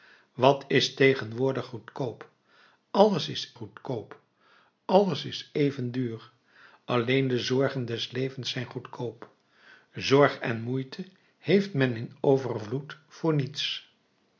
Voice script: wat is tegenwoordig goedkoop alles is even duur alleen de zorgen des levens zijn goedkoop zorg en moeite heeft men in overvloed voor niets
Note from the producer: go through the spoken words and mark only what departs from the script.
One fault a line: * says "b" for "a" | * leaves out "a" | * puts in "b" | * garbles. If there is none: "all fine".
* puts in "goedkoop alles is"